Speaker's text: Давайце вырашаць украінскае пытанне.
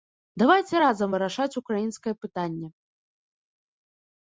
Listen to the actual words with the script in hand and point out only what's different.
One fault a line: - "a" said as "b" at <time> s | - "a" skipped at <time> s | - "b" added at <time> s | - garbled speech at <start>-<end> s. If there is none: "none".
- "разам" added at 0.8 s